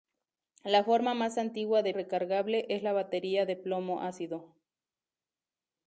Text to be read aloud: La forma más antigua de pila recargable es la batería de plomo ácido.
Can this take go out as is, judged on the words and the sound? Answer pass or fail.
fail